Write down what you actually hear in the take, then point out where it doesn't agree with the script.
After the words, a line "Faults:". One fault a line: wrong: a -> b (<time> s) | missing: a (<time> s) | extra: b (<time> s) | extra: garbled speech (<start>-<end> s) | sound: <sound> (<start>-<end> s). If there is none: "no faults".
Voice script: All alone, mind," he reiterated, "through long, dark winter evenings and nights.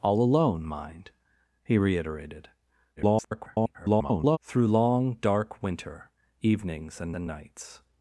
All alone, mind," he reiterated, [garbled] "through long, dark winter evenings and and nights.
Faults:
extra: garbled speech (3.0-4.4 s)
extra: and (7.1 s)